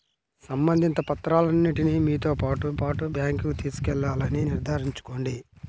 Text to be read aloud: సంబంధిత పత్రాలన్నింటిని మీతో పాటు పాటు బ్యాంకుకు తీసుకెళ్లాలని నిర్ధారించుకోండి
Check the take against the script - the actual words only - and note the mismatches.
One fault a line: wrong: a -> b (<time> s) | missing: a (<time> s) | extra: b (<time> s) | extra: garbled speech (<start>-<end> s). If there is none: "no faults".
no faults